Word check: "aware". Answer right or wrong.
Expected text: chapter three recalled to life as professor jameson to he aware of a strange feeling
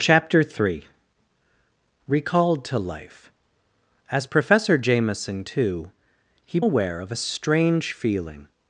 right